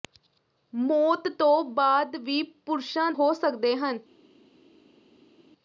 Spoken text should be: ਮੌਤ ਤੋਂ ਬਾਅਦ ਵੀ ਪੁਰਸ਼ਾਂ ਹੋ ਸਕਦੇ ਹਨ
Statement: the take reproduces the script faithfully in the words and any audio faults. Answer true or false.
true